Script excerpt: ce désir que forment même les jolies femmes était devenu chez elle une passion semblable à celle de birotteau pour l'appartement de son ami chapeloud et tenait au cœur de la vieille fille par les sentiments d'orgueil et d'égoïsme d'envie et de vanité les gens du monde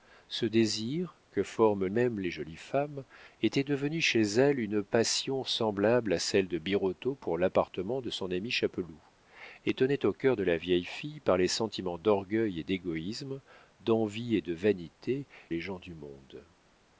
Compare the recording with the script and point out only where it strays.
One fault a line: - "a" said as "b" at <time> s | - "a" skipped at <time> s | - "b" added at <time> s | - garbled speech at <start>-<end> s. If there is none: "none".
none